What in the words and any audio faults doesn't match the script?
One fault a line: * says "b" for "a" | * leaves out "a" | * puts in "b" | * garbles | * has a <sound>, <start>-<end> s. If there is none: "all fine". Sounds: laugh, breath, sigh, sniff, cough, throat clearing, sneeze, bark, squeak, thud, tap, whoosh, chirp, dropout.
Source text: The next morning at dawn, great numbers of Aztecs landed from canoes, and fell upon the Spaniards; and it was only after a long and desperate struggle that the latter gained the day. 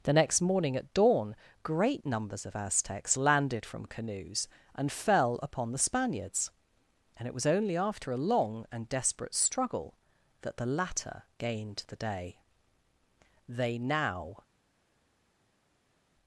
* puts in "They now"